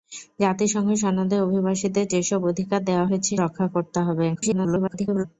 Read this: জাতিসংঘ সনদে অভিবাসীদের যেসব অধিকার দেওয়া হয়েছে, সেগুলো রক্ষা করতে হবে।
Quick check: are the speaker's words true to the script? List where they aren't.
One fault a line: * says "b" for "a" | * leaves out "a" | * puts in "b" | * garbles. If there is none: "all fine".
* leaves out "সেগুলো"
* garbles